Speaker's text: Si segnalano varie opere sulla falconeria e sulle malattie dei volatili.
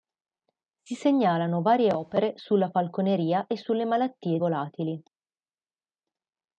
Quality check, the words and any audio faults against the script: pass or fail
fail